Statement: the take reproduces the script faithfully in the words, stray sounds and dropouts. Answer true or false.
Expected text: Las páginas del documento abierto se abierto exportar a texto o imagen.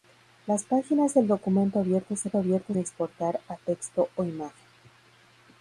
true